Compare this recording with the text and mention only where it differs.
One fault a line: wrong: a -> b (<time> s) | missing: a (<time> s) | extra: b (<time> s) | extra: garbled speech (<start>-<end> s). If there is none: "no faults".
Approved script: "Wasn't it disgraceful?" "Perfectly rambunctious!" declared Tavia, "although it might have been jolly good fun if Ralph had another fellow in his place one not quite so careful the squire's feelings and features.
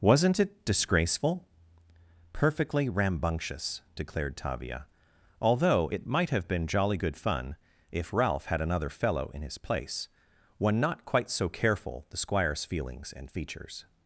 no faults